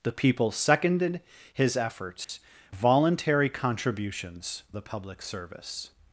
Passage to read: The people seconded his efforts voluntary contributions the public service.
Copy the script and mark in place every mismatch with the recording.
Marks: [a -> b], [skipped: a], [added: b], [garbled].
The people seconded his efforts voluntary contributions the public service.